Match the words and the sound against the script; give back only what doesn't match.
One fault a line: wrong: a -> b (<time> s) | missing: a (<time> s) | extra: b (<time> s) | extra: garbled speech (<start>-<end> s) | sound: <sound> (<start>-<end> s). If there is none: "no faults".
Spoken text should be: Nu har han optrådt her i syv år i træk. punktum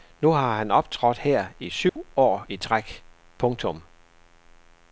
sound: dropout (1.9-2.0 s)